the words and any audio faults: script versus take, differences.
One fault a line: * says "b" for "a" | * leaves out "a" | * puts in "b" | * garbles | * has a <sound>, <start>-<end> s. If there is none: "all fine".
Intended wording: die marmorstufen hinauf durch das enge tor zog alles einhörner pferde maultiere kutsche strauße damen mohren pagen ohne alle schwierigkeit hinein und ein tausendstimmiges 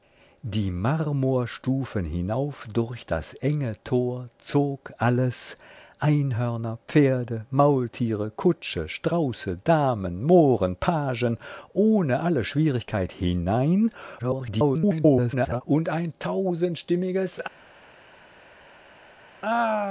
* garbles